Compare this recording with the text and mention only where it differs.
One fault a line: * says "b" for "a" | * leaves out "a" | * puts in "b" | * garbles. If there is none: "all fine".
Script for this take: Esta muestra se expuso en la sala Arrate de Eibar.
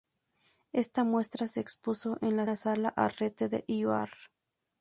* puts in "la"